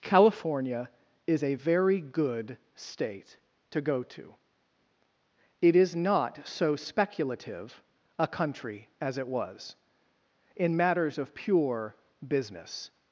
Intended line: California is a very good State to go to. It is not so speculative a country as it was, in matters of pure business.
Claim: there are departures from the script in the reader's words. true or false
false